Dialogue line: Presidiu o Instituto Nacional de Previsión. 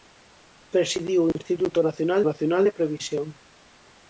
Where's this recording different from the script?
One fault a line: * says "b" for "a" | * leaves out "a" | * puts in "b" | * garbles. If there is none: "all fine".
* puts in "Nacional"